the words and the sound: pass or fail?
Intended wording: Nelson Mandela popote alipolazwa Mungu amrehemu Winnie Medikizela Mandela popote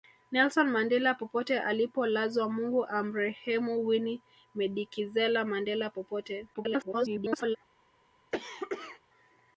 fail